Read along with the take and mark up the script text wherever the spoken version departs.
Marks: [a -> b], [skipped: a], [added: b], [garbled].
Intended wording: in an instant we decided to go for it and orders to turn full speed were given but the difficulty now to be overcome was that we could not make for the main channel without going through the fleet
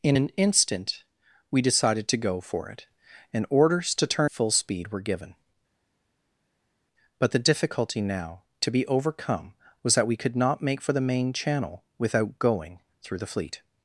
in an instant we decided to go for it and orders to turn full speed were given but the difficulty now to be overcome was that we could not make for the main channel without going through the fleet